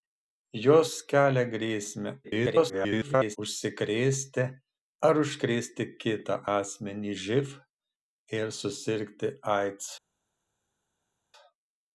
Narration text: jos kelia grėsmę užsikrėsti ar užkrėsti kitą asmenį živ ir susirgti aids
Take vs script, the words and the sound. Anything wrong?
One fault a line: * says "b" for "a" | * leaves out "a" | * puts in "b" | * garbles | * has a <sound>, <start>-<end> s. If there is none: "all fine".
* garbles